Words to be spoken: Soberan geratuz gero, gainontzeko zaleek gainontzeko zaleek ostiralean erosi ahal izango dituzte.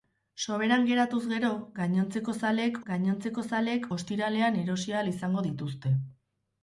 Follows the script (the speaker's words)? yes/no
yes